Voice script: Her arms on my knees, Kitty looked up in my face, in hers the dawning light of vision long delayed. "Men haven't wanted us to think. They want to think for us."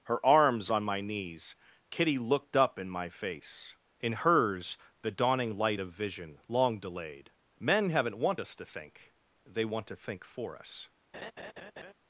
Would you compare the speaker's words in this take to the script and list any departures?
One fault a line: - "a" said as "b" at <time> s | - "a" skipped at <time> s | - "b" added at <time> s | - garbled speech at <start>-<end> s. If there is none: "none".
- "wanted" said as "want" at 8.2 s